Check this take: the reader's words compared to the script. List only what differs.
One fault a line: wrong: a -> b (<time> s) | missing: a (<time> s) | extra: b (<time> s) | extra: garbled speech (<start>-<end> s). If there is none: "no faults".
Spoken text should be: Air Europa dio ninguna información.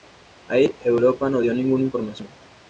extra: no (1.3 s)